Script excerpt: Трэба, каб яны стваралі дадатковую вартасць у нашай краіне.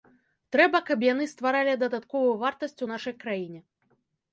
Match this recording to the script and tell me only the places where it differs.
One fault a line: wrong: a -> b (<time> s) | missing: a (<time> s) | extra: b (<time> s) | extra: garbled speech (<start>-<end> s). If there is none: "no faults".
no faults